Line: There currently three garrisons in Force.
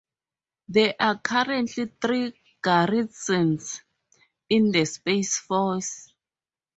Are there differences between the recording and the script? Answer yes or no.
yes